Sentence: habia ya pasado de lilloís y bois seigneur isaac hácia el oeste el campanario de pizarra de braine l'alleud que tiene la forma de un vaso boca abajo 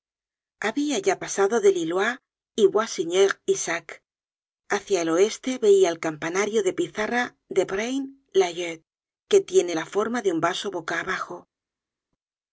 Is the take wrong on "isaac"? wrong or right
right